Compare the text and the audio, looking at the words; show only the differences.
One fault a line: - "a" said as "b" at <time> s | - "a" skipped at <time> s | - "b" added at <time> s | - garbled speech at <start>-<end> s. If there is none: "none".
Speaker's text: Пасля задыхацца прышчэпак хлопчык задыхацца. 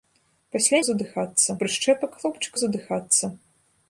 none